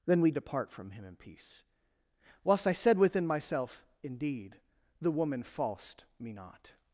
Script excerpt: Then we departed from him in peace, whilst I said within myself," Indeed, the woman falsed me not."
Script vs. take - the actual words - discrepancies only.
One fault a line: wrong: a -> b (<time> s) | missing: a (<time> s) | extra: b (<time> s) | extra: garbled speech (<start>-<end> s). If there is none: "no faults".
wrong: departed -> depart (0.3 s)